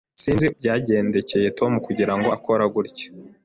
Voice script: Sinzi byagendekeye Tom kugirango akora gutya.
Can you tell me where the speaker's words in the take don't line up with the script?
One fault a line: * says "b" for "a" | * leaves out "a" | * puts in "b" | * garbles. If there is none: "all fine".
all fine